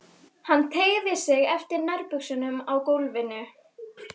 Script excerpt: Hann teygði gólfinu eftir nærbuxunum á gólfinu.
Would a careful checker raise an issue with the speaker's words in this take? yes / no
yes